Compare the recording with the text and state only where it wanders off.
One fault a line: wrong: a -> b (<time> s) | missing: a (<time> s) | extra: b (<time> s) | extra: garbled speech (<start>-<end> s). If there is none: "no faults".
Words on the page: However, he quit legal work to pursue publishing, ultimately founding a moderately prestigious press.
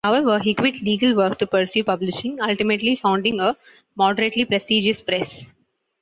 no faults